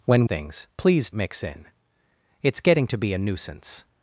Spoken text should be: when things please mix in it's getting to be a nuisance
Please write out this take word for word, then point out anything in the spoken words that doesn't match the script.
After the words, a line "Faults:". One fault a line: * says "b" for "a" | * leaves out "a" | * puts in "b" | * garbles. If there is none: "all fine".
when things please mix in it's getting to be a nuisance
Faults:
all fine